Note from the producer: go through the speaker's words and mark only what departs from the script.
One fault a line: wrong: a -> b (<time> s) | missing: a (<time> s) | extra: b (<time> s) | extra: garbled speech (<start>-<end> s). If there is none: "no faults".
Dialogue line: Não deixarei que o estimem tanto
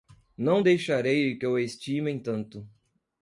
no faults